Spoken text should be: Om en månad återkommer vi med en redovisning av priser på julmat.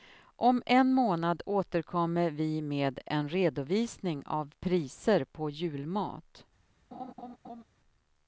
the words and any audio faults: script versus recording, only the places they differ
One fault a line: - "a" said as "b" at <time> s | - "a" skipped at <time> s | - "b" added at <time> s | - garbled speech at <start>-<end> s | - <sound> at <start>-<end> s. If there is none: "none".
- laugh at 6.9-7.6 s